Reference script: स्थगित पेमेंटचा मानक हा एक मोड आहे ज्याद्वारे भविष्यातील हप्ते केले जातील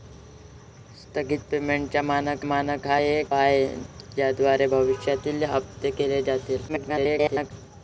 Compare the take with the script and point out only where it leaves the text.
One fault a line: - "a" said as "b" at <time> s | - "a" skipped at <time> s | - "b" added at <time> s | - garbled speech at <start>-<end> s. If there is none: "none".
- "मानक" added at 2.4 s
- "मोड" skipped at 3.3 s
- garbled speech at 6.7-7.5 s